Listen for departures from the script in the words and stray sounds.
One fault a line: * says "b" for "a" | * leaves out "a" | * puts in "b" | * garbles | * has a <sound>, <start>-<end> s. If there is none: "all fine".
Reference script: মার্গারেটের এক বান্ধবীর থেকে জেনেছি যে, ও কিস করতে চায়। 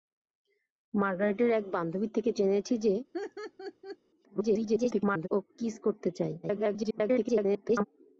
* has a laugh, 3.1-4.0 s
* garbles
* garbles